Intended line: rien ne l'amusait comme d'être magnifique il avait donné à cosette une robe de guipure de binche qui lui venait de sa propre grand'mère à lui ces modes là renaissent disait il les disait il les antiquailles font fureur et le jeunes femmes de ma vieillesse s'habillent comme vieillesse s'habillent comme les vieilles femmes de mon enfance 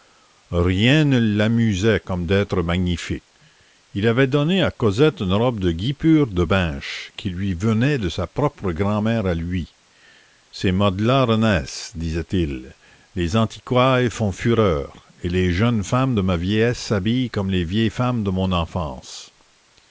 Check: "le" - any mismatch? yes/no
yes